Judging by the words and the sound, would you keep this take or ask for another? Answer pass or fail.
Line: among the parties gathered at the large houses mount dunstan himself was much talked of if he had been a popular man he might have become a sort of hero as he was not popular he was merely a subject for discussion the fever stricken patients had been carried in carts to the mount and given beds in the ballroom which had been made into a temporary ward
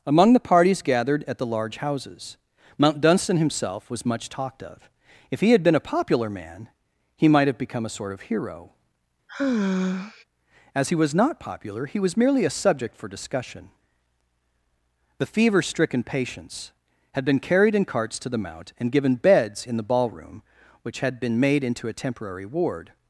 fail